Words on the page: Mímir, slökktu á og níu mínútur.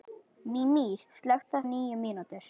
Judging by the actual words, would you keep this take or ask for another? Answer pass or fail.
pass